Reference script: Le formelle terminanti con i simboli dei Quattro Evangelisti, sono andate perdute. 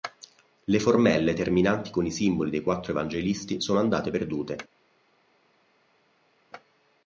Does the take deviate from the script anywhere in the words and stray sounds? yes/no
no